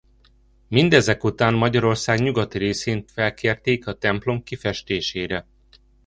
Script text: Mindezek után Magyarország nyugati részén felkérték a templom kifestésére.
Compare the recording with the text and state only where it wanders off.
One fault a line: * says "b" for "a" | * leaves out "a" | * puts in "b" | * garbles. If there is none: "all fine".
all fine